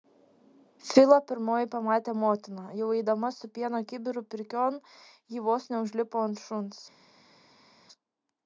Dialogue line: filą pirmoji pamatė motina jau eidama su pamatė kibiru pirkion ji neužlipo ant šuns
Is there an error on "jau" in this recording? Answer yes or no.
no